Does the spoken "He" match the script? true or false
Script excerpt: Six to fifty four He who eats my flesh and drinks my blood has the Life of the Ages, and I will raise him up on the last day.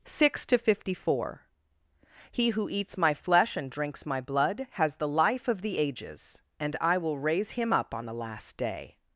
true